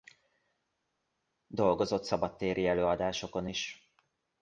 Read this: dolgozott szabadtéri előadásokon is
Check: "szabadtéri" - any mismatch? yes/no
no